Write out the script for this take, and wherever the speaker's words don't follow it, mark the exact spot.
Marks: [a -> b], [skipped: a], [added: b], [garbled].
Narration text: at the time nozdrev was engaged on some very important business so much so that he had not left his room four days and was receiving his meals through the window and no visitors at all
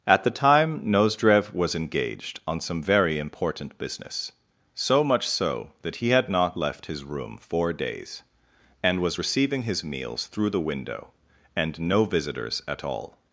at the time nozdrev was engaged on some very important business so much so that he had not left his room four days and was receiving his meals through the window and no visitors at all